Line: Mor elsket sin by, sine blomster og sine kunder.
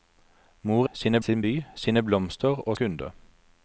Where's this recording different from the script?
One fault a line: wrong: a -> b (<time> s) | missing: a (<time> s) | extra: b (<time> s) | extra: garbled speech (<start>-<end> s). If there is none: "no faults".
wrong: elsket -> sine (0.9 s)
missing: sine (2.8 s)